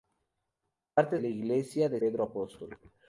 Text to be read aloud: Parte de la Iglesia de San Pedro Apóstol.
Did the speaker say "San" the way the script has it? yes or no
no